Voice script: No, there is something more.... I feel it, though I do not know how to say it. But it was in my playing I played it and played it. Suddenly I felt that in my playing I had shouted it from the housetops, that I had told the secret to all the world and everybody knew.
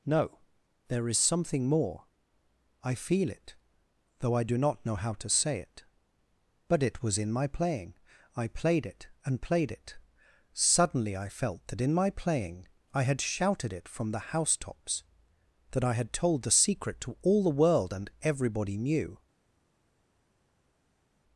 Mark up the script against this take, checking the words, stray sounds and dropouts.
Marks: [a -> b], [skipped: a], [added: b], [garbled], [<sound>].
No, there is something more.... I feel it, though I do not know how to say it. But it was in my playing I played it and played it. Suddenly I felt that in my playing I had shouted it from the housetops, that I had told the secret to all the world and everybody knew.